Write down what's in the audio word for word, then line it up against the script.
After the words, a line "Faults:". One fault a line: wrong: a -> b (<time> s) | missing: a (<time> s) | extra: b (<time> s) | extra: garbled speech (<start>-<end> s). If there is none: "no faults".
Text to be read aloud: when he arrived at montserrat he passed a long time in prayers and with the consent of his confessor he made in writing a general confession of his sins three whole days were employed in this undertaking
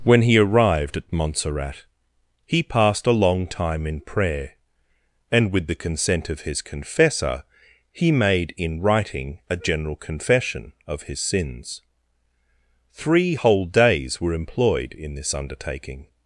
when he arrived at montserrat he passed a long time in prayer and with the consent of his confessor he made in writing a general confession of his sins three whole days were employed in this undertaking
Faults:
wrong: prayers -> prayer (4.0 s)